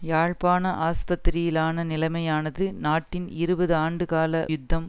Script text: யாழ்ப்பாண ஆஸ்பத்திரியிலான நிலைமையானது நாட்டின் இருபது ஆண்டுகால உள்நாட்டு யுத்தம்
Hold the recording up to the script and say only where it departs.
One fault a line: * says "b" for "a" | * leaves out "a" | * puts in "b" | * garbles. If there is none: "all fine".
* leaves out "உள்நாட்டு"